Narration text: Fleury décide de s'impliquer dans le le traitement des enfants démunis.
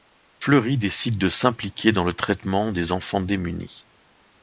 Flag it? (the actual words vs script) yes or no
yes